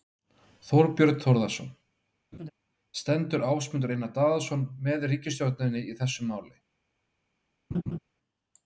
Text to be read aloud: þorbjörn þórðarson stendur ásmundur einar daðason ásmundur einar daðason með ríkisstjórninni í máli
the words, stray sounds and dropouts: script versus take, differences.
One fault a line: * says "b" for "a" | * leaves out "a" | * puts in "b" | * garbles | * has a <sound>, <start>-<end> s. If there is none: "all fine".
* has a laugh, 2.3-2.5 s
* leaves out "ásmundur einar daðason"
* puts in "þessu"
* has a laugh, 7.7-8.0 s